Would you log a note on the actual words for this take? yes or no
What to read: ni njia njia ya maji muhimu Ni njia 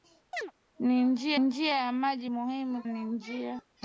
no